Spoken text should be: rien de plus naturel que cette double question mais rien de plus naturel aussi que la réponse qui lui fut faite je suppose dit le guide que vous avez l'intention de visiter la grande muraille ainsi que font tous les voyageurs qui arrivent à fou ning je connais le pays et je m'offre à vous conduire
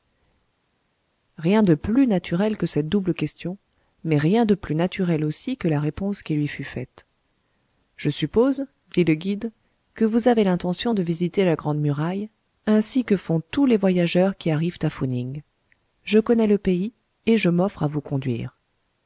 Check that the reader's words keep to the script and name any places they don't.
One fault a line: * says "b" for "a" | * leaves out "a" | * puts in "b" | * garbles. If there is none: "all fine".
all fine